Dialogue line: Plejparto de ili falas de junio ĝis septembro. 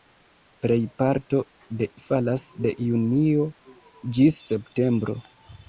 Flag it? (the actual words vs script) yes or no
yes